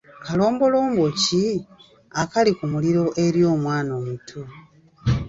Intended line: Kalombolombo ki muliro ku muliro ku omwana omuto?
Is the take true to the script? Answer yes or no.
no